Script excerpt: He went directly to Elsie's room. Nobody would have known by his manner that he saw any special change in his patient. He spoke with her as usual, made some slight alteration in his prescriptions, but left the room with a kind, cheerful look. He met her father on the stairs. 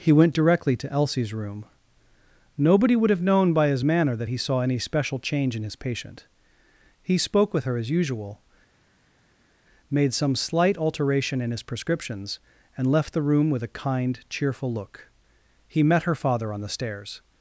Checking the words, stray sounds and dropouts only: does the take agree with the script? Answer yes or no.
no